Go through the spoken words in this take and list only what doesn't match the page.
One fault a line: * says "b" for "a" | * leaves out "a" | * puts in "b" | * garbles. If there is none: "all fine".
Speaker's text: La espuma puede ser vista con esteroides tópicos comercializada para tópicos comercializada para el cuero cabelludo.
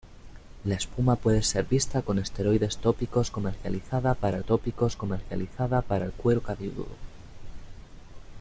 all fine